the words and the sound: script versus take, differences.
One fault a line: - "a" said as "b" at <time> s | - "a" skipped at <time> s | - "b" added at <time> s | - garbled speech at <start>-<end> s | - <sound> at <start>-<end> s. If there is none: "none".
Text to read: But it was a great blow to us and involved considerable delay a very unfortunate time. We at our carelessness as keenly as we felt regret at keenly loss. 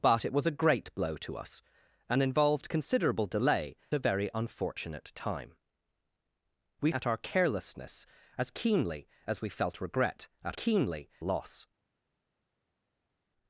none